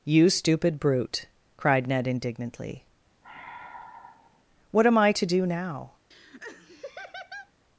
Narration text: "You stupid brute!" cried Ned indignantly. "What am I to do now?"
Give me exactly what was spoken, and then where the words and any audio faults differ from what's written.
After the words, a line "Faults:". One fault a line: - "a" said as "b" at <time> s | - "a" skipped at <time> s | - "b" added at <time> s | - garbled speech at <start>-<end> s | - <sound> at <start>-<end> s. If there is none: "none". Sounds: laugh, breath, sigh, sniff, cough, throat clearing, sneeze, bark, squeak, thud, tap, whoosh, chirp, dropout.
"You stupid brute!" cried Ned indignantly. "What am I to do now?"
Faults:
- sigh at 3.2-4.4 s
- laugh at 6.1-7.5 s